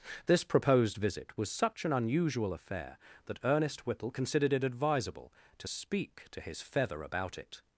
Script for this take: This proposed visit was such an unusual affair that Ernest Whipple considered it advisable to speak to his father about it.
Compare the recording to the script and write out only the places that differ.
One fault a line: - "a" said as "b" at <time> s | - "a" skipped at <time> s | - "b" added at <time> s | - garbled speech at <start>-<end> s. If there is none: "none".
- "father" said as "feather" at 6.6 s